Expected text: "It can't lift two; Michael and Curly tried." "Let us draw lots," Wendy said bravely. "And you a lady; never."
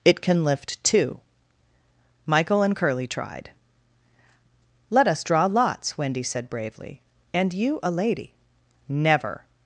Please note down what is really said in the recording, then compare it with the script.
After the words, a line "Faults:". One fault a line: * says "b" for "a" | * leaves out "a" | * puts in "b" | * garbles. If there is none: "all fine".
"It can lift two; Michael and Curly tried." "Let us draw lots," Wendy said bravely. "And you a lady; never."
Faults:
* says "can" for "can't"